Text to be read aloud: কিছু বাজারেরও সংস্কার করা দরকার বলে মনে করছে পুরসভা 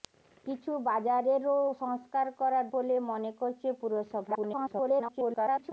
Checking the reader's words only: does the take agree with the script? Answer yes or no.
no